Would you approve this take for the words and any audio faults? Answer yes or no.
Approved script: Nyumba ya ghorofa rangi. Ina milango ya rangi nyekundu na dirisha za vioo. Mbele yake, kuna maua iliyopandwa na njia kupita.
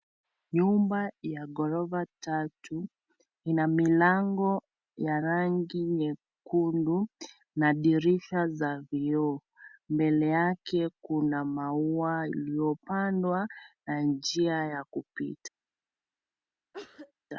no